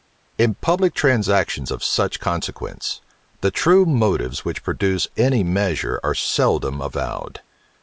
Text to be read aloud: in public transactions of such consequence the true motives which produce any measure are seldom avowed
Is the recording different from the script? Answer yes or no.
no